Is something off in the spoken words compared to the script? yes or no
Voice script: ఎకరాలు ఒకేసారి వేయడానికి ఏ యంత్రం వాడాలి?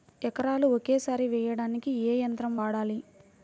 no